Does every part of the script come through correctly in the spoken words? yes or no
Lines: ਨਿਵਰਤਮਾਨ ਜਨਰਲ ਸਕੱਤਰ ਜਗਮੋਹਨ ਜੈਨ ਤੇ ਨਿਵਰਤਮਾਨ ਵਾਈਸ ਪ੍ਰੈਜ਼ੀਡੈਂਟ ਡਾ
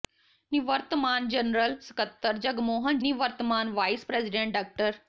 no